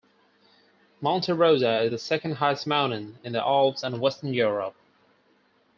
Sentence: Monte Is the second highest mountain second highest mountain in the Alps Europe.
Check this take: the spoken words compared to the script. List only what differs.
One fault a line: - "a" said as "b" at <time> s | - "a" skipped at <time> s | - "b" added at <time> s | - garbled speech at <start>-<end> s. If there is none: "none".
- "Rosa" added at 1.3 s
- "second highest mountain" skipped at 3.2 s
- "and western" added at 3.8 s